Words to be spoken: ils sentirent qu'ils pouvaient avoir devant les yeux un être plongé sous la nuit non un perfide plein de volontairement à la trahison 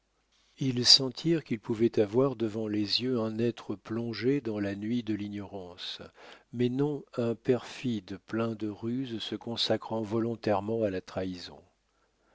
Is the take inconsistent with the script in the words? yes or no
yes